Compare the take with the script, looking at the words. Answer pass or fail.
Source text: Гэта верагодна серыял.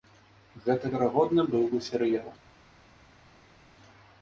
fail